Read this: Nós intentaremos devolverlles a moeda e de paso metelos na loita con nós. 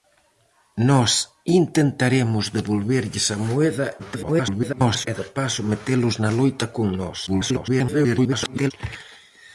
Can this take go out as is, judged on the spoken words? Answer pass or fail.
fail